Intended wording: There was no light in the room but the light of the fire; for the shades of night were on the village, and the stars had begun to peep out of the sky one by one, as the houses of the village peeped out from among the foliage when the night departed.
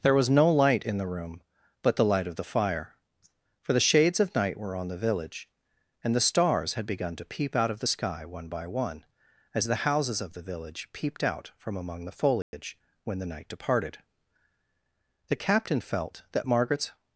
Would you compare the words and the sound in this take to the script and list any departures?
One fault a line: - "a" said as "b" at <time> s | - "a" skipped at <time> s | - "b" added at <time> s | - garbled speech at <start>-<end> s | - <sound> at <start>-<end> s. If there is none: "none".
- dropout at 12.4-12.5 s
- "The captain felt that Margaret's" added at 15.3 s